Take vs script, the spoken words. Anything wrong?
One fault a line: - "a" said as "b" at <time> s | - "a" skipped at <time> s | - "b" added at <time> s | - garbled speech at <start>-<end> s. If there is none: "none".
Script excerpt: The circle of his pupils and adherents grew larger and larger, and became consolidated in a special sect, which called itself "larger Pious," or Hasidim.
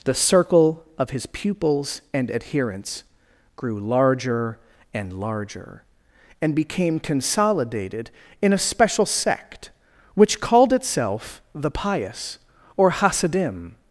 - "larger" said as "the" at 11.5 s